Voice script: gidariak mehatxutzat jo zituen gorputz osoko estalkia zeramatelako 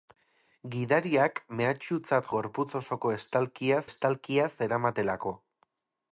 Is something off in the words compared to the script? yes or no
yes